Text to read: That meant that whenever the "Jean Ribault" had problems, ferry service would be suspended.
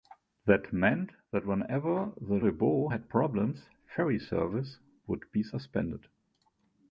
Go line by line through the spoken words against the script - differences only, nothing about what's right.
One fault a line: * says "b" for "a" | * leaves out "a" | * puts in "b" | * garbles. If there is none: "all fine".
* leaves out "Jean"